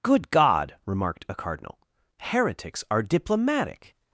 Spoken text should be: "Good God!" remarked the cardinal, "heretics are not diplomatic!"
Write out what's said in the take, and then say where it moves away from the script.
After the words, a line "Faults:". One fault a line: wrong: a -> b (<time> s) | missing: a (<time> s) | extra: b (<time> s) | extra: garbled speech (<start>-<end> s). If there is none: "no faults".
"Good God!" remarked a cardinal, "heretics are diplomatic!"
Faults:
wrong: the -> a (1.3 s)
missing: not (3.0 s)